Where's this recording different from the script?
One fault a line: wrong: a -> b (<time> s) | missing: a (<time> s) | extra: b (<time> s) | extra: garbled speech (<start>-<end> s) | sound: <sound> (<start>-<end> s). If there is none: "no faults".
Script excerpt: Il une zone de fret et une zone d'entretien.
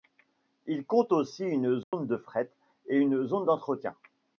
extra: compte aussi (0.9 s)
sound: dropout (1.8-1.9 s)